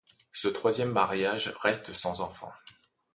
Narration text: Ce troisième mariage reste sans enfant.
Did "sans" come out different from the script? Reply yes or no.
no